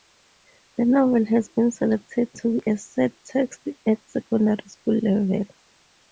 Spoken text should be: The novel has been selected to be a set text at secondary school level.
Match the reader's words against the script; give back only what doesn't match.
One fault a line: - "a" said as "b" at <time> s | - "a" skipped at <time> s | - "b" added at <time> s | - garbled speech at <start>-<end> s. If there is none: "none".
none